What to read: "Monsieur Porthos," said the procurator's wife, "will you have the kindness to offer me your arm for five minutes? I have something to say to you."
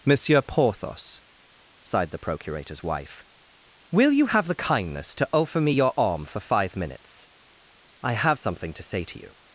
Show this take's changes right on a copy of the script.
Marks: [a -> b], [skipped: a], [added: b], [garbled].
"Monsieur Porthos," [said -> sighed] the procurator's wife, "will you have the kindness to offer me your arm for five minutes? I have something to say to you."